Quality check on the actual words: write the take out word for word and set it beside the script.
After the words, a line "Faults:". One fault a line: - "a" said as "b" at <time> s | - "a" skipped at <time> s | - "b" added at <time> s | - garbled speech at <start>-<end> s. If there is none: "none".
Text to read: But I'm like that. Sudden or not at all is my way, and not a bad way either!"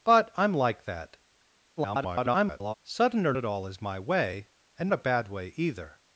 But I'm like that. [garbled] Sudden or at all is my way, and a bad way either!"
Faults:
- garbled speech at 1.8-2.7 s
- "not" skipped at 3.3 s
- "not" skipped at 4.9 s